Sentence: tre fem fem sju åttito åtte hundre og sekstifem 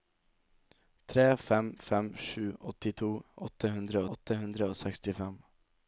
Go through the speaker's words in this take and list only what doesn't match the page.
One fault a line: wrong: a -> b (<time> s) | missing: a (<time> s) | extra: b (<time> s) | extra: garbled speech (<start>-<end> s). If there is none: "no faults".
extra: åtte hundre (4.2 s)